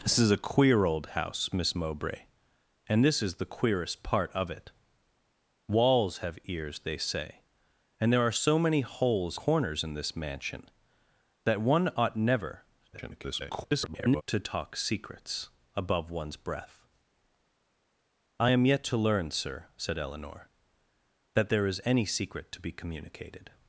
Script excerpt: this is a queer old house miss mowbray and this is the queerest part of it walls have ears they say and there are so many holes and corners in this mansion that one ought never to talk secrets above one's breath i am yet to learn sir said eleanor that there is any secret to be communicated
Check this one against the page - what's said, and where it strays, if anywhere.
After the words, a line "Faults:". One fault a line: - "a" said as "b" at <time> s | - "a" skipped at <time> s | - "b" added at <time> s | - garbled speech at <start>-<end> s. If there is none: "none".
this is a queer old house miss mowbray and this is the queerest part of it walls have ears they say and there are so many holes corners in this mansion that one ought never [garbled] to talk secrets above one's breath i am yet to learn sir said eleanor that there is any secret to be communicated
Faults:
- "and" skipped at 9.4 s
- garbled speech at 12.9-14.2 s